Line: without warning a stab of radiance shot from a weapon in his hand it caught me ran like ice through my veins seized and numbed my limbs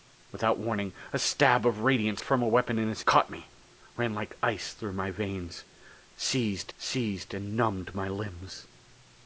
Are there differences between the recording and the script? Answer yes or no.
yes